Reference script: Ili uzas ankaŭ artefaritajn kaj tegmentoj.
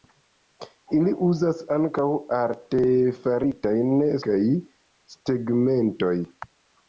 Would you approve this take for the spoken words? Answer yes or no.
yes